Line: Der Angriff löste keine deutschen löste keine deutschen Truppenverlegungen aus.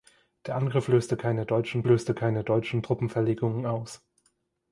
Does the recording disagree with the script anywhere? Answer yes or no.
no